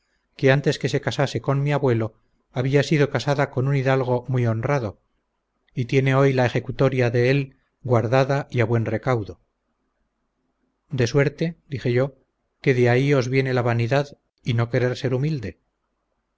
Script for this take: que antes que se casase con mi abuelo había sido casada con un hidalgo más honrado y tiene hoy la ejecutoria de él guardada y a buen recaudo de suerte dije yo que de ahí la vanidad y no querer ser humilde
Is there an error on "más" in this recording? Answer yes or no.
yes